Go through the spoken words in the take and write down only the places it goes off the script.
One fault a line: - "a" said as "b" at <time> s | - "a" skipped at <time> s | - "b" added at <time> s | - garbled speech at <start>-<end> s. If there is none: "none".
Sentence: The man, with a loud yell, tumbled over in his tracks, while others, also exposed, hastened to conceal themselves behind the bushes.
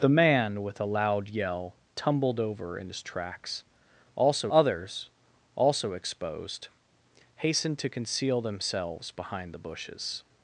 - "while" said as "also" at 4.1 s